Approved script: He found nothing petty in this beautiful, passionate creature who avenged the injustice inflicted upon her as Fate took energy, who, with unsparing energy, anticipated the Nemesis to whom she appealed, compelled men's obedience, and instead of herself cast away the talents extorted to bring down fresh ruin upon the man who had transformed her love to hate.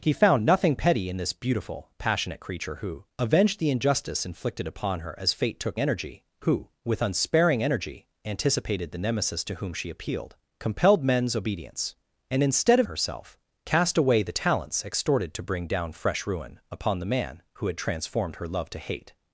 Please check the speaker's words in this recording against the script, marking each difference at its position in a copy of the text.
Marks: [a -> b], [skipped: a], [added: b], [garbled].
He found nothing petty in this beautiful, passionate creature who avenged the injustice inflicted upon her as Fate took energy, who, with unsparing energy, anticipated the Nemesis to whom she appealed, compelled men's obedience, and instead of herself cast away the talents extorted to bring down fresh ruin upon the man who had transformed her love to hate.